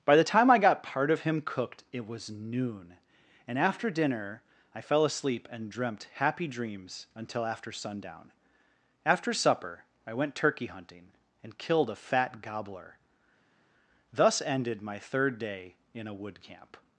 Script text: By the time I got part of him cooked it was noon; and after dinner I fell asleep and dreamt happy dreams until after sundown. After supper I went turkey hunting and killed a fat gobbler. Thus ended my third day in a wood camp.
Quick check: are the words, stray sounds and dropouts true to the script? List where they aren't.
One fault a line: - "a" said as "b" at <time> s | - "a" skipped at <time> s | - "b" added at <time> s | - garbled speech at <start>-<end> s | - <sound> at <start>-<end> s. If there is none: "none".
none